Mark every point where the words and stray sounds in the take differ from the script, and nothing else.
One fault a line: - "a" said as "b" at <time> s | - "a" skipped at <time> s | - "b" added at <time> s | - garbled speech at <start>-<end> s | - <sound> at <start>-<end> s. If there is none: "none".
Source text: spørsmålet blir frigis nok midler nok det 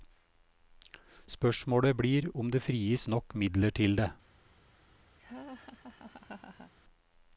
- "om det" added at 2.3 s
- "nok" said as "til" at 3.7 s
- laugh at 5.2-6.7 s